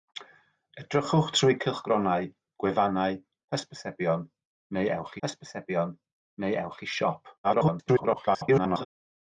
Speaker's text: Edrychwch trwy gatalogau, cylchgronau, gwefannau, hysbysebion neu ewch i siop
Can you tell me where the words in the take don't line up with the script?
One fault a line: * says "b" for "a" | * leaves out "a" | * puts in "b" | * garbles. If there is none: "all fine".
* leaves out "gatalogau"
* puts in "hysbysebion neu ewch"
* garbles